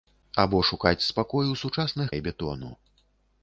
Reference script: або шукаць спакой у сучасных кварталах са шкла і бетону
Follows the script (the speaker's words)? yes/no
no